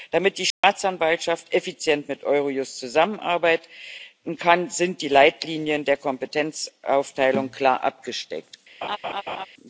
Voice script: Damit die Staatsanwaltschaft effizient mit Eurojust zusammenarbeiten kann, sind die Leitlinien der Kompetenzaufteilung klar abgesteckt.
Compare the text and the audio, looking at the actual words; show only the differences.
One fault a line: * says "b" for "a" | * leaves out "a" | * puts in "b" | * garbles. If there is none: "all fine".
all fine